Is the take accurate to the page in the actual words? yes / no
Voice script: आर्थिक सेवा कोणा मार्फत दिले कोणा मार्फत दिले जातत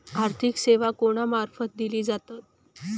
no